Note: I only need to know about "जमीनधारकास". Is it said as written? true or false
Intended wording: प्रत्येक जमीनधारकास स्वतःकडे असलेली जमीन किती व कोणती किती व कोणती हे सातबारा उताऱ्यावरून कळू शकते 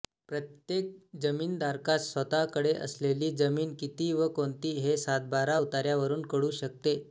true